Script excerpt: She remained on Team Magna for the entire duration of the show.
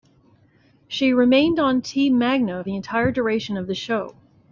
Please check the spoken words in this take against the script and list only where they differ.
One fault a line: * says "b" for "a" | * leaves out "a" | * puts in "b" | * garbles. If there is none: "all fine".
* leaves out "for"